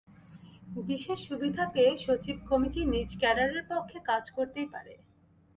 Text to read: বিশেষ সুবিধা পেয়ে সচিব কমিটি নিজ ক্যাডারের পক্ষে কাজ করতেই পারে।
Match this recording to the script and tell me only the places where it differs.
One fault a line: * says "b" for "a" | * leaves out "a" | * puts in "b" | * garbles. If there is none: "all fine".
all fine